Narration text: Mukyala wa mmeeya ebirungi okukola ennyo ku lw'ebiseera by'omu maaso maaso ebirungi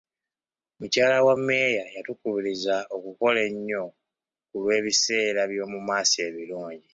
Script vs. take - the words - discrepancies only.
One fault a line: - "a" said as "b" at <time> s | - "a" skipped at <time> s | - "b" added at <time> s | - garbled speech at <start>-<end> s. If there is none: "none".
- "ebirungi" said as "yatukubiriza" at 2.0 s
- "maaso" skipped at 6.2 s